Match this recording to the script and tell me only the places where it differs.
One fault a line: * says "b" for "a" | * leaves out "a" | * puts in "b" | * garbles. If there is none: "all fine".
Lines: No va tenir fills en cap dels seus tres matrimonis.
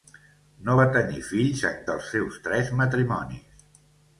* leaves out "cap"